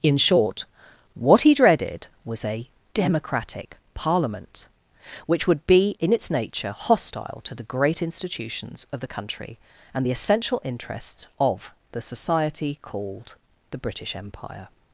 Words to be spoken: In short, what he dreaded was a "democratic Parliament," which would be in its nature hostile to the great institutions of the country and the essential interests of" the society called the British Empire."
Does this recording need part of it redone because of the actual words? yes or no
no